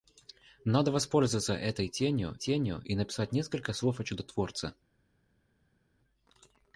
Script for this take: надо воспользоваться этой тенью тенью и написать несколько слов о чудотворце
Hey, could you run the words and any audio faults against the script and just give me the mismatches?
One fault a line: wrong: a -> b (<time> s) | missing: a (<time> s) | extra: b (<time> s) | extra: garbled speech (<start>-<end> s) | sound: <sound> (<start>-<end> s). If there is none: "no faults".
no faults